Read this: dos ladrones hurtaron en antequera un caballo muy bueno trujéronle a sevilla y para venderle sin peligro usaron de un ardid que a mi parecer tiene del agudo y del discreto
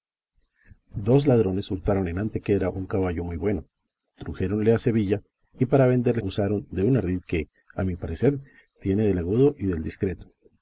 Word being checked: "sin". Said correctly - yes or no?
no